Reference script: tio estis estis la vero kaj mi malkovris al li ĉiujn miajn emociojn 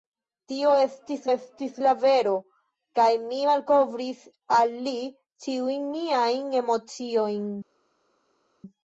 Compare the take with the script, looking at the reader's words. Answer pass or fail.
pass